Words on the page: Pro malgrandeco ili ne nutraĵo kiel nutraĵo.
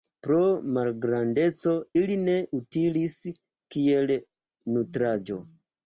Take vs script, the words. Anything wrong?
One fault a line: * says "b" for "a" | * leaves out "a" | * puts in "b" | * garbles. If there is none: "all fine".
* says "utilis" for "nutraĵo"